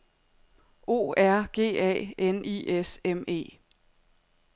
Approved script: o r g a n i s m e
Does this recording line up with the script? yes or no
yes